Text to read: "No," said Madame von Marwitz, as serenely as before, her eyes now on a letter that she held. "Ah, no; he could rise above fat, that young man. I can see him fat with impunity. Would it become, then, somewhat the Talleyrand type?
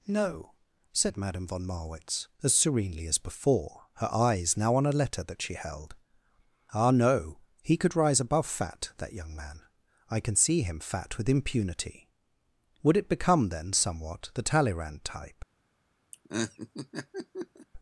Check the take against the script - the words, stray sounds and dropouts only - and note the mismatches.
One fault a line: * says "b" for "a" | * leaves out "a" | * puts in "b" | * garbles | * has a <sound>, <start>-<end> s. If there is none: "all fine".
* has a laugh, 16.1-17.7 s